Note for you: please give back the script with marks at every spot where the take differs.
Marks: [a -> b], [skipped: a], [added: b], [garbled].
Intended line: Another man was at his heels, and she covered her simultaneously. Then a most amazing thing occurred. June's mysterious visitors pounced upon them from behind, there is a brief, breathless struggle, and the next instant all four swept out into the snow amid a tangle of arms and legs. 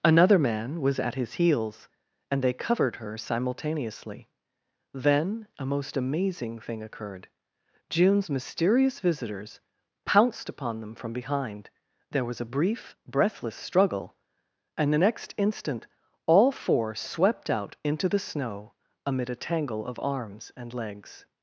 Another man was at his heels, and [she -> they] covered her simultaneously. Then a most amazing thing occurred. June's mysterious visitors pounced upon them from behind, there [is -> was] a brief, breathless struggle, and the next instant all four swept out into the snow amid a tangle of arms and legs.